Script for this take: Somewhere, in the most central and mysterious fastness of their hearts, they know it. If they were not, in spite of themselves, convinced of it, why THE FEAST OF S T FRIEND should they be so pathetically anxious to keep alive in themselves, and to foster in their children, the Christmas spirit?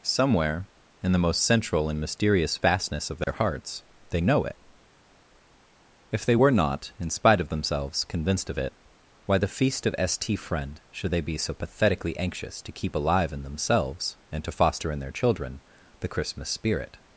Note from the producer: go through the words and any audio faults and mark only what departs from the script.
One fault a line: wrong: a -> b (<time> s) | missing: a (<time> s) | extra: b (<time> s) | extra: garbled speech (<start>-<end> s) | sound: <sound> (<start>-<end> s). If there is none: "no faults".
sound: dropout (3.2-3.3 s)